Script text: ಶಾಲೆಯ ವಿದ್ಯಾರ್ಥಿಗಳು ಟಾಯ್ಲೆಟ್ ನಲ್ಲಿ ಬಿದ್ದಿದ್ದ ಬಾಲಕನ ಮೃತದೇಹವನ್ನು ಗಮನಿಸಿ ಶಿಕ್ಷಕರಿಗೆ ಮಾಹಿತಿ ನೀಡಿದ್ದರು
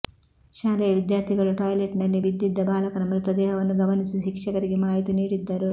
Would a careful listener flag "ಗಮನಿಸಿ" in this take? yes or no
no